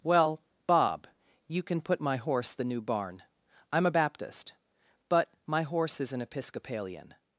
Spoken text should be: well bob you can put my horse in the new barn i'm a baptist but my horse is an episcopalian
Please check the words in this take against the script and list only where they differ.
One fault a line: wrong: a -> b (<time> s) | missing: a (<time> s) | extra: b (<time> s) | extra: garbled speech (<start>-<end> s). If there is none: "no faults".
missing: in (2.5 s)